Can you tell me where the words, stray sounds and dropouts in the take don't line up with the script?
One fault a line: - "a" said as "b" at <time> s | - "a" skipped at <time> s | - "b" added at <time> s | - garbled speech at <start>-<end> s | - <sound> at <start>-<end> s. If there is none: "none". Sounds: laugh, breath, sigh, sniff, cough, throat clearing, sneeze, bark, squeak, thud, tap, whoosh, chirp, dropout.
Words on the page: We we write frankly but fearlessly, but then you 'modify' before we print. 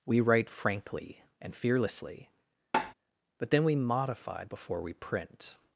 - "we" skipped at 0.2 s
- "but" said as "and" at 1.4 s
- tap at 2.7-2.9 s
- "you" said as "we" at 3.6 s